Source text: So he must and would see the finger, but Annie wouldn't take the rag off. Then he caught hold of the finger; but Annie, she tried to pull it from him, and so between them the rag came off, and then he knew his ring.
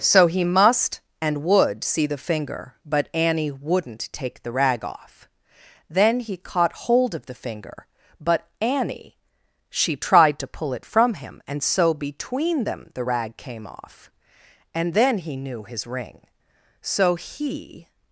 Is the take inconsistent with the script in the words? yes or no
yes